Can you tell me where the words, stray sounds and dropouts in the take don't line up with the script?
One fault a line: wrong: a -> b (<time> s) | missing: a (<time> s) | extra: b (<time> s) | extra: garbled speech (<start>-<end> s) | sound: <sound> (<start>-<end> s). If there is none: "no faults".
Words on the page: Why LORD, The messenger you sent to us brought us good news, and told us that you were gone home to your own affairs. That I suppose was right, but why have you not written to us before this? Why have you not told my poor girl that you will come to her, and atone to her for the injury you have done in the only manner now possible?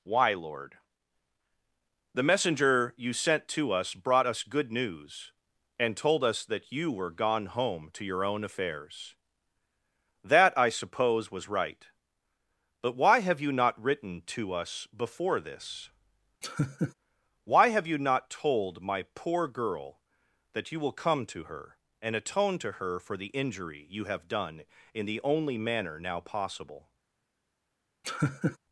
sound: laugh (16.4-16.9 s)
sound: laugh (28.0-28.6 s)